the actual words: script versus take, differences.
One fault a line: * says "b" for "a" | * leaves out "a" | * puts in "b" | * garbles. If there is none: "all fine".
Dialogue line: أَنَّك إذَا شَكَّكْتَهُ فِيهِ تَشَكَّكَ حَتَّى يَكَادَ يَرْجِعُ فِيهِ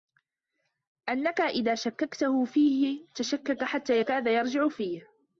all fine